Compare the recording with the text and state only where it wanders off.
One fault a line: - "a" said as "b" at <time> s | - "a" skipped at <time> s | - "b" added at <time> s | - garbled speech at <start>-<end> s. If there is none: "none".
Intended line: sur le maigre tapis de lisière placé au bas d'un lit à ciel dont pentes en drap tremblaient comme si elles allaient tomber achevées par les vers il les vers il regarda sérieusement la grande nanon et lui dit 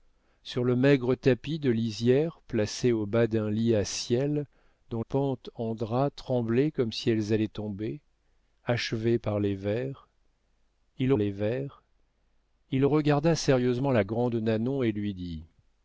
none